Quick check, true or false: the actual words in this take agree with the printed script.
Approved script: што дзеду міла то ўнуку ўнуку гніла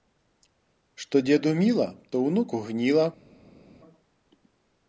false